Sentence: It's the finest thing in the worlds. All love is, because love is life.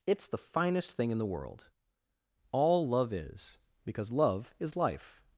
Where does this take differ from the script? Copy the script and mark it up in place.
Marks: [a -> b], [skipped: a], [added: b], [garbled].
It's the finest thing in the [worlds. -> world] All love is, because love is life.